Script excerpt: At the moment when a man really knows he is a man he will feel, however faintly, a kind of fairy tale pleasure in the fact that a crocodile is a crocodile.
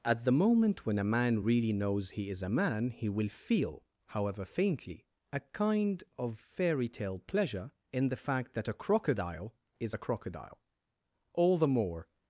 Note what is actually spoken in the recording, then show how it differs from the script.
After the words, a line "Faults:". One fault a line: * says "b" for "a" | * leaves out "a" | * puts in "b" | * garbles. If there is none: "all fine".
At the moment when a man really knows he is a man he will feel, however faintly, a kind of fairy tale pleasure in the fact that a crocodile is a crocodile. All the more
Faults:
* puts in "All the more"